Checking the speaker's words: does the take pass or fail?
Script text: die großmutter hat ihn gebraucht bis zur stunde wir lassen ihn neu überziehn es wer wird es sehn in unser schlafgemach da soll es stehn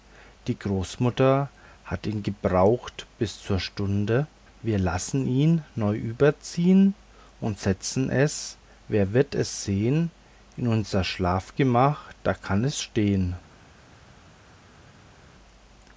fail